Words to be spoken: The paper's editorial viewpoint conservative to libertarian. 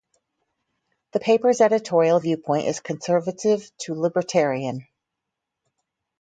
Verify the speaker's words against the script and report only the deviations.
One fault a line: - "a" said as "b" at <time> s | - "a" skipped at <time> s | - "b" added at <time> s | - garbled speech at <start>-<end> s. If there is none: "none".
- "is" added at 2.7 s